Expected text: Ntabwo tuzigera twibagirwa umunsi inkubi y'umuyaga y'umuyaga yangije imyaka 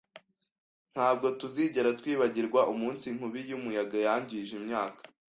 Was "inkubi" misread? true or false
false